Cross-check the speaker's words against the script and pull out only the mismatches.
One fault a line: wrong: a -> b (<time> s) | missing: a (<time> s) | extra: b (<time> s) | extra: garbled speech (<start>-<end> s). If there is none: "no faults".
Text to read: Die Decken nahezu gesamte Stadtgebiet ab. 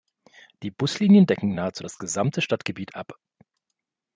extra: Buslinien (0.7 s)
extra: das (1.8 s)